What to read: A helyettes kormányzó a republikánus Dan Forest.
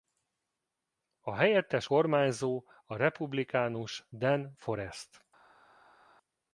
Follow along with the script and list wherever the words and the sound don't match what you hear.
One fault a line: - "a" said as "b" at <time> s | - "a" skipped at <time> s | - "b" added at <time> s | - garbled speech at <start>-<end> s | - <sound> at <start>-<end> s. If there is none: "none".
none